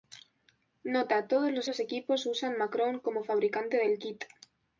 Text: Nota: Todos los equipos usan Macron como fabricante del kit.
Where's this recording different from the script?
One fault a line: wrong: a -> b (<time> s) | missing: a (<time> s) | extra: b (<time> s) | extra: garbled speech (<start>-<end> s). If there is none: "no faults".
extra: los (1.6 s)